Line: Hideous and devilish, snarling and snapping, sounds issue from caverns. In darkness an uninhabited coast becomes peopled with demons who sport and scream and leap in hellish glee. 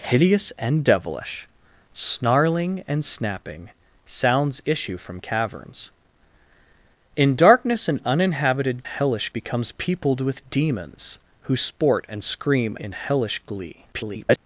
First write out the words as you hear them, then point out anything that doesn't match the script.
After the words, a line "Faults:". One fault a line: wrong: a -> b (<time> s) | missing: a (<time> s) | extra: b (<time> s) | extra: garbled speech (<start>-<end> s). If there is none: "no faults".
Hideous and devilish, snarling and snapping, sounds issue from caverns. In darkness an uninhabited hellish becomes peopled with demons who sport and scream in hellish glee. [garbled]
Faults:
wrong: coast -> hellish (8.8 s)
missing: and leap (12.8 s)
extra: garbled speech (13.9-14.4 s)